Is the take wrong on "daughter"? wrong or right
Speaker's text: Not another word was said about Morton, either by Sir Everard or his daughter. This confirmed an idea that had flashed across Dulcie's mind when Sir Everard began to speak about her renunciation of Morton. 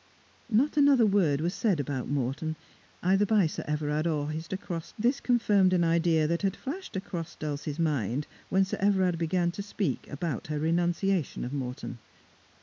wrong